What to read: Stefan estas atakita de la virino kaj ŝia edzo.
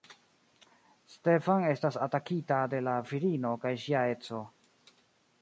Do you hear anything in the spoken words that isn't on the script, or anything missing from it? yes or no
no